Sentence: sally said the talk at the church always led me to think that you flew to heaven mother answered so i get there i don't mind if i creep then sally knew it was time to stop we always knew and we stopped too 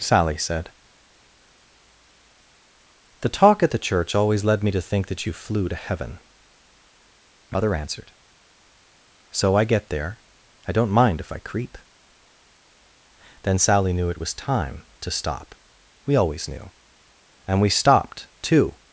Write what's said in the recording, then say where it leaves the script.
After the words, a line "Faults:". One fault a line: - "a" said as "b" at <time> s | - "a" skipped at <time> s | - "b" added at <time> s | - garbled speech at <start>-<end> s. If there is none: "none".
sally said the talk at the church always led me to think that you flew to heaven mother answered so i get there i don't mind if i creep then sally knew it was time to stop we always knew and we stopped too
Faults:
none